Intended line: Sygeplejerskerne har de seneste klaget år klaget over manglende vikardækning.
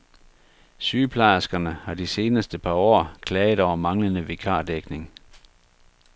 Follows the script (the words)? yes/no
no